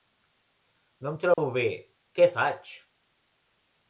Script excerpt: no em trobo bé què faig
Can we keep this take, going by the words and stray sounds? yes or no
no